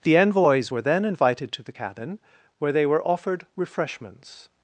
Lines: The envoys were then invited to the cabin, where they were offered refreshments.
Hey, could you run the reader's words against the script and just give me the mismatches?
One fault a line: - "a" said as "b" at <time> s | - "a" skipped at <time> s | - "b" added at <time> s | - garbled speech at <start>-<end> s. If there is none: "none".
none